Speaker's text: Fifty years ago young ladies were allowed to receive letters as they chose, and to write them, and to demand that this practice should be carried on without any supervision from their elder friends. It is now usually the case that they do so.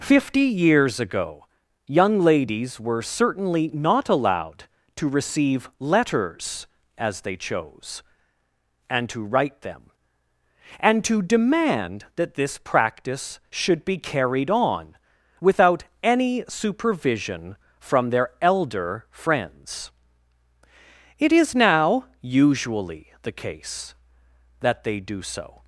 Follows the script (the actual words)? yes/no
no